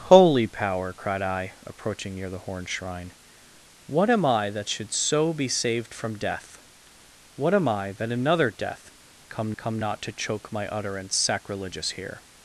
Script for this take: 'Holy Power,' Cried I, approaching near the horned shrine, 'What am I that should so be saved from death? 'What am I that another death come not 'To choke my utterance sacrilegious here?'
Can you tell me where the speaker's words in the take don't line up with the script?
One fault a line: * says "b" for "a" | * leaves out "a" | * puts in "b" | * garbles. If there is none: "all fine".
* puts in "come"